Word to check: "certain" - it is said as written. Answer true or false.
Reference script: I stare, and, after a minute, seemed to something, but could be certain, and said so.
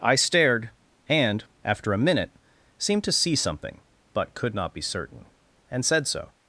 true